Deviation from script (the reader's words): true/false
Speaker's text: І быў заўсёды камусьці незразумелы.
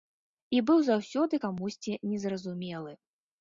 false